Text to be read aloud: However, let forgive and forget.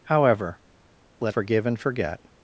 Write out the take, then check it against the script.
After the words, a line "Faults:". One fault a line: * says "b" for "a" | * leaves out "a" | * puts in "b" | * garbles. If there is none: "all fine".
However, let forgive and forget.
Faults:
all fine